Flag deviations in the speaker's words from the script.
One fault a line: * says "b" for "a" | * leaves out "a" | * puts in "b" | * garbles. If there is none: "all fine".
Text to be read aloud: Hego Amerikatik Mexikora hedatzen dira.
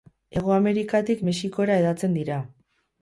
all fine